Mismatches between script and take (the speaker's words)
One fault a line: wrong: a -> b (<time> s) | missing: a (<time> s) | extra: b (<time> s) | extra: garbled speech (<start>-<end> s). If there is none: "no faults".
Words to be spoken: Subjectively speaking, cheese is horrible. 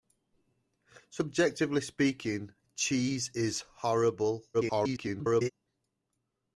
extra: garbled speech (4.5-5.5 s)